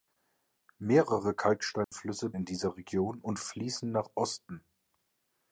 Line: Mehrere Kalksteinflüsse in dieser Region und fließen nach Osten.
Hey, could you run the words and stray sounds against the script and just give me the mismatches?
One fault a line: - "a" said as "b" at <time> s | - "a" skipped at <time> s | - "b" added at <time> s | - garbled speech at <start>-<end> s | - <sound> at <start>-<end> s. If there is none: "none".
- dropout at 1.8-1.9 s